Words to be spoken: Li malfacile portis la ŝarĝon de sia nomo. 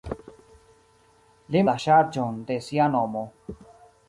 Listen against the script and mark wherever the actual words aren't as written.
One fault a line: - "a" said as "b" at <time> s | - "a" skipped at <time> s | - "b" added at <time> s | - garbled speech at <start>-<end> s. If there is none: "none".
- "malfacile portis" skipped at 1.6 s